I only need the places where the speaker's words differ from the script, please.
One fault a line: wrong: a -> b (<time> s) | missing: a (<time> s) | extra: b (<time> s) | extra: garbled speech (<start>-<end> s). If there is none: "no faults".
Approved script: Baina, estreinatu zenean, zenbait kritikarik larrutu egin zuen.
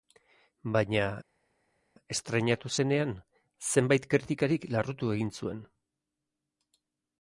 no faults